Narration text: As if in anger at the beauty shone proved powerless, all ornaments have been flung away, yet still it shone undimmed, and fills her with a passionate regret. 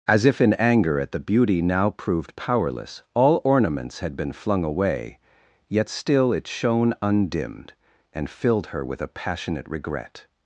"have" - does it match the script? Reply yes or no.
no